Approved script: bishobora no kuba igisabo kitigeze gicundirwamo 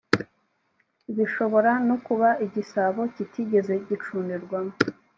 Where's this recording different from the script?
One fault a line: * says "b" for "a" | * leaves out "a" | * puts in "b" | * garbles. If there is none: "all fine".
all fine